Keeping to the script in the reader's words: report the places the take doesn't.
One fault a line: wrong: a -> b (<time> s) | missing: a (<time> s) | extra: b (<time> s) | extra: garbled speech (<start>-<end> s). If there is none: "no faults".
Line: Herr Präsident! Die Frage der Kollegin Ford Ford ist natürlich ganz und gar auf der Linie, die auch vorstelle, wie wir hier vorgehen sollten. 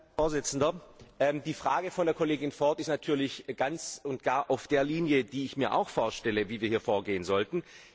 missing: Ford (2.8 s)
extra: ich mir (5.5 s)